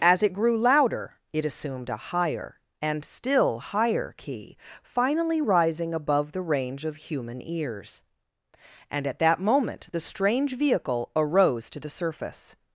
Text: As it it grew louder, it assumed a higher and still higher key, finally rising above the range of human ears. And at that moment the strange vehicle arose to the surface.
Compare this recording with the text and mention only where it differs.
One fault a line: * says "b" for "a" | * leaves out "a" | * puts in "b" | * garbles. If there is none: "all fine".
* leaves out "it"